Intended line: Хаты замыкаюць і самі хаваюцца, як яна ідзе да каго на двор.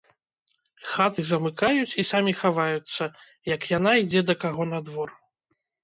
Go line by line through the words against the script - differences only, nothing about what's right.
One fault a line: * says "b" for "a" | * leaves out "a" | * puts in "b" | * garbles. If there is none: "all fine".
all fine